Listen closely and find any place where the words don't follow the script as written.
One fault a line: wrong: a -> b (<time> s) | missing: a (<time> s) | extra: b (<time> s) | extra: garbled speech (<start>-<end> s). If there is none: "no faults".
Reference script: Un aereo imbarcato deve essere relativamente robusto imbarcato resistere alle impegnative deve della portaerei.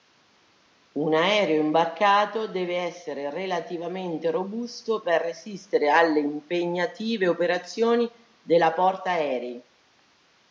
wrong: imbarcato -> per (5.0 s)
wrong: deve -> operazioni (7.3 s)